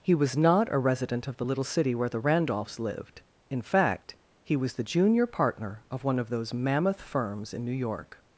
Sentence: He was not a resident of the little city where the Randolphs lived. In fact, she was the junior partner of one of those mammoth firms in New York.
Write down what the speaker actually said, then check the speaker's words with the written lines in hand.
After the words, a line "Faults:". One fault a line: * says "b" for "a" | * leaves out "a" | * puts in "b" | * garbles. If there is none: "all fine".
He was not a resident of the little city where the Randolphs lived. In fact, he was the junior partner of one of those mammoth firms in New York.
Faults:
* says "he" for "she"